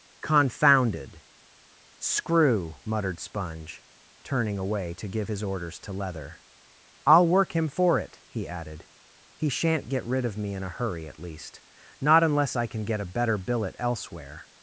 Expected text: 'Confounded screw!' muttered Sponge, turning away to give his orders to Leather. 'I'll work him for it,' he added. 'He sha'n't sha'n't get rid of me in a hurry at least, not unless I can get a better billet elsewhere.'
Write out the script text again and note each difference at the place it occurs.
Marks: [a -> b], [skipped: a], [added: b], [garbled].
'Confounded screw!' muttered Sponge, turning away to give his orders to Leather. 'I'll work him for it,' he added. 'He sha'n't [skipped: sha'n't] get rid of me in a hurry at least, not unless I can get a better billet elsewhere.'